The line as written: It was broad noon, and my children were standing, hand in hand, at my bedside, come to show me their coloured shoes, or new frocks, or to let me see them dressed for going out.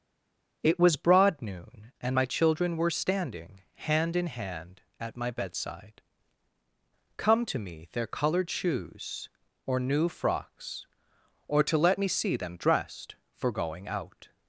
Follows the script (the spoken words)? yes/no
no